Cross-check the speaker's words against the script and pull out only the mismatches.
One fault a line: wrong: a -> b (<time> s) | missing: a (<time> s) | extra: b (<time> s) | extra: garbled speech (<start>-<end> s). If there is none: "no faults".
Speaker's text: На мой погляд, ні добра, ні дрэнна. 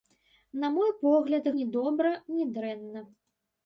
no faults